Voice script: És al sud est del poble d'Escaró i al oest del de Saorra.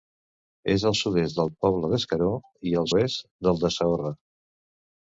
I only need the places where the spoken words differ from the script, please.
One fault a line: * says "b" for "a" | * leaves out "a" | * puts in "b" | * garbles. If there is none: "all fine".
all fine